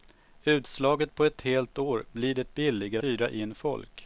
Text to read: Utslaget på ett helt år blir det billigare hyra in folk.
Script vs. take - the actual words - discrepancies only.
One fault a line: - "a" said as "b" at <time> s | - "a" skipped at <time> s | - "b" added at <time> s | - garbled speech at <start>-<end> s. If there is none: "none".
none